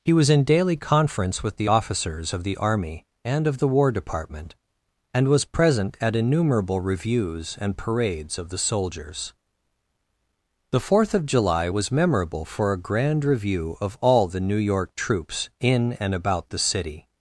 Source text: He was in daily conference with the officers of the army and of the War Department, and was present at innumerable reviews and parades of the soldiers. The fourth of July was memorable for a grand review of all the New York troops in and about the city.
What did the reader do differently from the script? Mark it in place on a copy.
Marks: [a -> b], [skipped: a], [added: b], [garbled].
He was in daily conference with the officers of the army and of the War Department, and was present at innumerable reviews and parades of the soldiers. The fourth of July was memorable for a grand review of all the New York troops in and about the city.